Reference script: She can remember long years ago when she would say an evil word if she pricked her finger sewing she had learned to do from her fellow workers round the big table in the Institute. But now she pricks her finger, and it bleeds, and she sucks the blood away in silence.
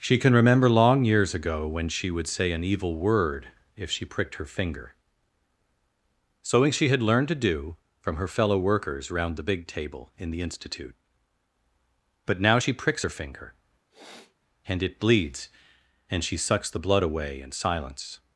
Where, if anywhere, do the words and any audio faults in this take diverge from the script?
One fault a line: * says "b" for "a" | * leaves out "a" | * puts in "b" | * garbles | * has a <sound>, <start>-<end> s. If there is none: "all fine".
* has a sniff, 13.9-14.4 s